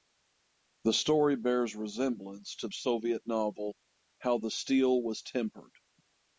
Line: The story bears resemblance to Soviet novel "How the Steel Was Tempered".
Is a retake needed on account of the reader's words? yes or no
no